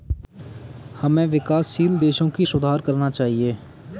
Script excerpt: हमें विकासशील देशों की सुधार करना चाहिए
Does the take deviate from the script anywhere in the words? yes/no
no